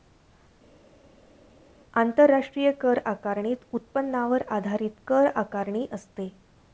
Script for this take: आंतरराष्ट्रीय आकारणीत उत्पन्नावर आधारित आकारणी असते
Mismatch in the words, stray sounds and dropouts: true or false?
true